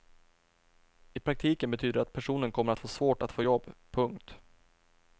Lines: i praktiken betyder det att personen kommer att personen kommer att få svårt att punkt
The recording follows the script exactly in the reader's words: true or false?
false